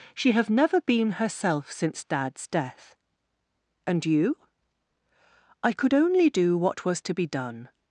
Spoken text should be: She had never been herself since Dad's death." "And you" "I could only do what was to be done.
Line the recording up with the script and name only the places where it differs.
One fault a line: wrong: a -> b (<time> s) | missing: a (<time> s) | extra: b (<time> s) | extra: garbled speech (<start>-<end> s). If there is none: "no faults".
wrong: had -> have (0.3 s)